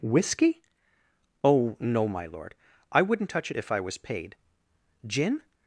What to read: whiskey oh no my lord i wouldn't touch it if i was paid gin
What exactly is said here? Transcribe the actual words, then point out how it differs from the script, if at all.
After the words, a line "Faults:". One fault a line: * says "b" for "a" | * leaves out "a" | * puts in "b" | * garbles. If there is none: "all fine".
whiskey oh no my lord i wouldn't touch it if i was paid gin
Faults:
all fine